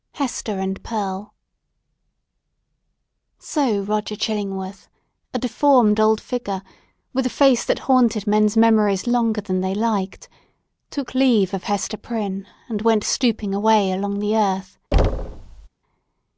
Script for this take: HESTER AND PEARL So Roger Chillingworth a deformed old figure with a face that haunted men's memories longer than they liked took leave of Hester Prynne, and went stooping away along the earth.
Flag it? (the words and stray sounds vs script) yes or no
yes